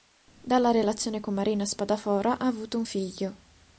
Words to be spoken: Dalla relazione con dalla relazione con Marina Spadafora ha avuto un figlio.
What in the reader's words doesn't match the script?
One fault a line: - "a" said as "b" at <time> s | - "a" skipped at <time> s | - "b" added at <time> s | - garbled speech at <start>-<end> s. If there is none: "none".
- "dalla relazione con" skipped at 1.3 s